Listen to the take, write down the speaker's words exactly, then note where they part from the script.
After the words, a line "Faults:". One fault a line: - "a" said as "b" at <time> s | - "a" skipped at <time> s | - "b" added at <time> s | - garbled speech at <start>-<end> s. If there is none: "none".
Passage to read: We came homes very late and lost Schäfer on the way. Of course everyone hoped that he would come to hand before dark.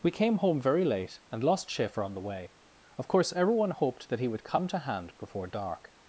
We came home very late and lost Schäfer on the way. Of course everyone hoped that he would come to hand before dark.
Faults:
- "homes" said as "home" at 0.4 s